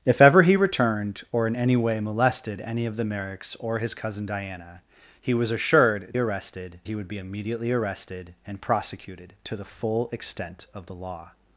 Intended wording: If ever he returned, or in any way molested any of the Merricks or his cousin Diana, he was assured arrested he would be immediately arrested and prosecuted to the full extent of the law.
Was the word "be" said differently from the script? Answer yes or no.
no